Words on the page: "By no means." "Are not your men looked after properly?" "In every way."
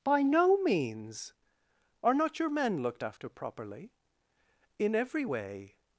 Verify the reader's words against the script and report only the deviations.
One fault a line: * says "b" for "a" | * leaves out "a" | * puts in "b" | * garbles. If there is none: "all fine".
all fine